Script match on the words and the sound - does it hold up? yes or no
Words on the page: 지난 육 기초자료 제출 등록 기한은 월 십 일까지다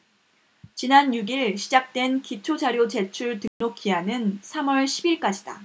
no